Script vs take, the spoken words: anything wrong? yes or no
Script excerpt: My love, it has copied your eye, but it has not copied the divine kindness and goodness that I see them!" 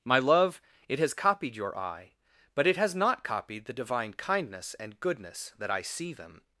no